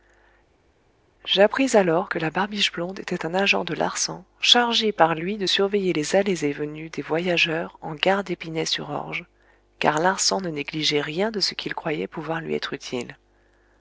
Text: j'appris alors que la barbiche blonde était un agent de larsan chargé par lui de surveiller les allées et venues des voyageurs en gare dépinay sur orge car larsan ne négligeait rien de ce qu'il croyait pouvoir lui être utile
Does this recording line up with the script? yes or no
yes